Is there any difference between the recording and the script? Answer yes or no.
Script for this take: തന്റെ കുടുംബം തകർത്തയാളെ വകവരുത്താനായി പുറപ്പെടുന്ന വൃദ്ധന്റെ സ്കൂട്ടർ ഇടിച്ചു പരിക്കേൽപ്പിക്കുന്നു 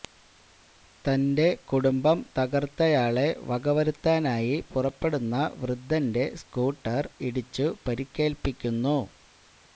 no